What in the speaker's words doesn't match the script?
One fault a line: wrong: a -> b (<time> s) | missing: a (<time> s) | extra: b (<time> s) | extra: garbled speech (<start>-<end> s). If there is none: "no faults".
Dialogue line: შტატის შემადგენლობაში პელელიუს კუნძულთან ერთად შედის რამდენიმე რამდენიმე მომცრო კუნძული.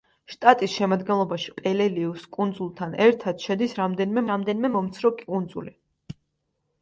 no faults